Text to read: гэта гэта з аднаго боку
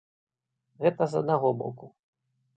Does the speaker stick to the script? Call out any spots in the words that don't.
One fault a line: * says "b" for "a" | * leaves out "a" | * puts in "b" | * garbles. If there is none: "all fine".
* leaves out "гэта"